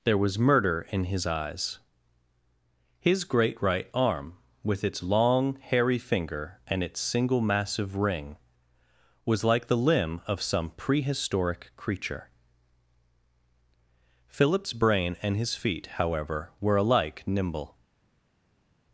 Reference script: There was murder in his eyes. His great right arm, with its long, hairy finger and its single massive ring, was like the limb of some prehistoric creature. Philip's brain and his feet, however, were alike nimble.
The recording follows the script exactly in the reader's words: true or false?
true